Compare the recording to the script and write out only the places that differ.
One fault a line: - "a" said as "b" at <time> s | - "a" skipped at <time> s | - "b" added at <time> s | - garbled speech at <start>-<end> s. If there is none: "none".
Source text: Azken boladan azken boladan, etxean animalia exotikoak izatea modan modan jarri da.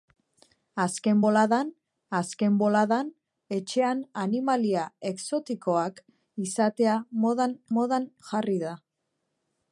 none